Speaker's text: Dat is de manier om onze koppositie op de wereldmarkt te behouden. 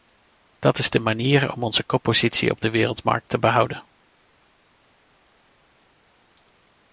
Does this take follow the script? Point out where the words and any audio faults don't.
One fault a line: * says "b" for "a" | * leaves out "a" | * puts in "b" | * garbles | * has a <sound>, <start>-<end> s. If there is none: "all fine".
all fine